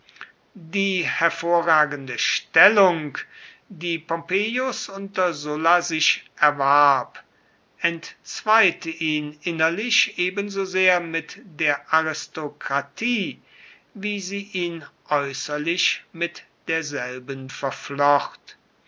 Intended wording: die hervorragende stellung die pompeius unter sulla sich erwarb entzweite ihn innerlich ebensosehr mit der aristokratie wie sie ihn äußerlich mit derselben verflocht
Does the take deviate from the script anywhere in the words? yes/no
no